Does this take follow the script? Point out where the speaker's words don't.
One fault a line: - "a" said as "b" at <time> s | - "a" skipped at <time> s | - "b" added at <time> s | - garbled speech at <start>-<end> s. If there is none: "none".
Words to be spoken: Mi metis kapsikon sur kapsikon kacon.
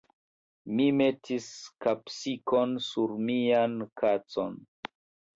- "kapsikon" said as "mian" at 3.3 s